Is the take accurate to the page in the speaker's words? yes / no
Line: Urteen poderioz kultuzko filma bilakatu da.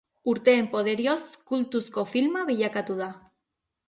yes